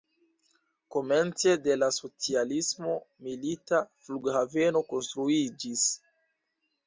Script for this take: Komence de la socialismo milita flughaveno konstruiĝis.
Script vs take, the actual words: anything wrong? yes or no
no